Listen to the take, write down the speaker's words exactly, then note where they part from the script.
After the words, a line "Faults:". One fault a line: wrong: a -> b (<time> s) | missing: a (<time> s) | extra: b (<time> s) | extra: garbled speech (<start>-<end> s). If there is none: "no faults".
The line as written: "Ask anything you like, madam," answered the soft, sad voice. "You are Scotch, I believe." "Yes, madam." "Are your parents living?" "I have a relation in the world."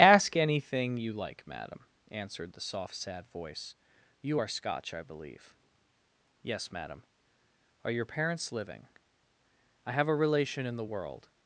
"Ask anything you like, madam," answered the soft, sad voice. "You are Scotch, I believe." "Yes, madam." "Are your parents living?" "I have a relation in the world."
Faults:
no faults